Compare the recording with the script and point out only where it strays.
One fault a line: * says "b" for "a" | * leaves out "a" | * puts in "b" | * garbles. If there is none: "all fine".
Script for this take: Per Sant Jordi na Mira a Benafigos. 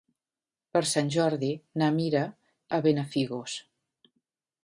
all fine